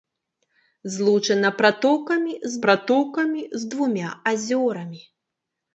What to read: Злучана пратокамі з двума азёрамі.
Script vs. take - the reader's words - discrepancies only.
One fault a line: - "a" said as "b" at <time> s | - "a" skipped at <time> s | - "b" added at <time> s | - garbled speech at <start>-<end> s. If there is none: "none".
- "пратокамі з" added at 2.6 s